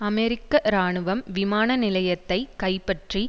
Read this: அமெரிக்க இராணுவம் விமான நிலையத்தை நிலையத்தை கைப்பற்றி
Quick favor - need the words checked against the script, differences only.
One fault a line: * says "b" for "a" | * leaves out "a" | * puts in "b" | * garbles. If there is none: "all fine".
* leaves out "நிலையத்தை"